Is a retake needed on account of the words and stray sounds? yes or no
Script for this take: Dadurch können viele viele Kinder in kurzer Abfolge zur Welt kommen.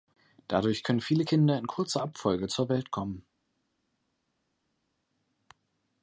yes